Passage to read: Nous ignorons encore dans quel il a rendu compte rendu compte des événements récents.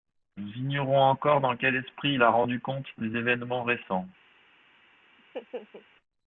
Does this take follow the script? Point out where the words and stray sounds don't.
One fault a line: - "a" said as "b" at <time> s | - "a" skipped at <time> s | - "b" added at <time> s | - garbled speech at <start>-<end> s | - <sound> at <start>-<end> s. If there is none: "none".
- "esprit" added at 1.8 s
- "rendu compte" skipped at 2.9 s
- laugh at 5.2-5.9 s